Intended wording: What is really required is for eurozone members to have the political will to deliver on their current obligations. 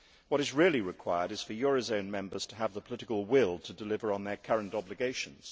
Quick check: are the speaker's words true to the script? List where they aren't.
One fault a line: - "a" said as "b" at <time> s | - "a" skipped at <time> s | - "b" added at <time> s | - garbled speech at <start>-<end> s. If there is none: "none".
none